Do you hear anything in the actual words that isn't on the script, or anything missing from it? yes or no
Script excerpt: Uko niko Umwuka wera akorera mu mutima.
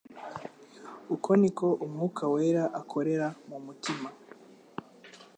no